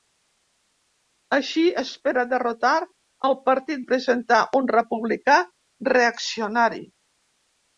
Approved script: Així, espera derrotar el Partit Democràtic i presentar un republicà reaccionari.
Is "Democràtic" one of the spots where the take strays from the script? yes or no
yes